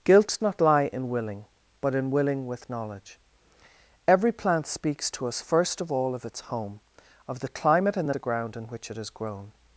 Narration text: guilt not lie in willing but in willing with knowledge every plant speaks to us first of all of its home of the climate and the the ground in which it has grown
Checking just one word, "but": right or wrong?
right